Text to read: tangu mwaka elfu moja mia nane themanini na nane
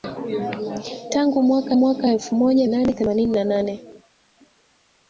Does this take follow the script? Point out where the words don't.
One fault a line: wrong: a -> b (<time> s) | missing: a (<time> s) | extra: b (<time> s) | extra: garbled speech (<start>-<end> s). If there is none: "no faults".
extra: mwaka (1.8 s)
missing: mia (2.7 s)